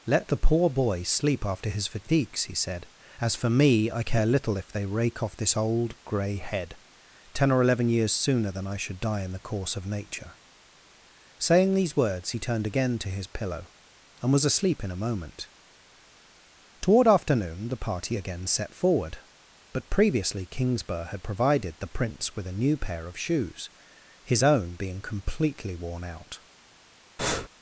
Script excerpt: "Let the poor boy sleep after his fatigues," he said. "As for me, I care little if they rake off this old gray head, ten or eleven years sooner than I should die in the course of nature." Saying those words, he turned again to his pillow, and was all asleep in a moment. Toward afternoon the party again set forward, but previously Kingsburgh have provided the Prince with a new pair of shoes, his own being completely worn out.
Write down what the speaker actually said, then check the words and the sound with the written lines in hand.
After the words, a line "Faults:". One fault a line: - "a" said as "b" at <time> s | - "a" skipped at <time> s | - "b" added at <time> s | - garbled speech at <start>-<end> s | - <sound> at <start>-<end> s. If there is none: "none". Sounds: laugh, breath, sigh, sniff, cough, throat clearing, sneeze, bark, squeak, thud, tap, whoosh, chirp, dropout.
"Let the poor boy sleep after his fatigues," he said. "As for me, I care little if they rake off this old gray head, ten or eleven years sooner than I should die in the course of nature." Saying these words, he turned again to his pillow, and was asleep in a moment. Toward afternoon the party again set forward, but previously Kingsburgh had provided the Prince with a new pair of shoes, his own being completely worn out.
Faults:
- "those" said as "these" at 11.7 s
- "all" skipped at 14.4 s
- "have" said as "had" at 21.1 s
- breath at 27.2-27.5 s